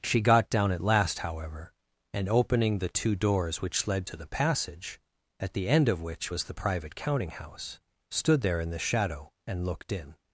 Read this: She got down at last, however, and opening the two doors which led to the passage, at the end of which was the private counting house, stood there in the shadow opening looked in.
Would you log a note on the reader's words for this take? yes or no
yes